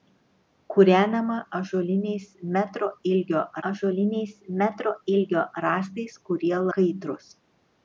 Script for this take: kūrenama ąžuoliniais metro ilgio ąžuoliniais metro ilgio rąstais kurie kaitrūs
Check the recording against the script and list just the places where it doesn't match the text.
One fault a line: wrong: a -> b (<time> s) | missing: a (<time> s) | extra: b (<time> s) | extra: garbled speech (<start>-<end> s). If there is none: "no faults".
no faults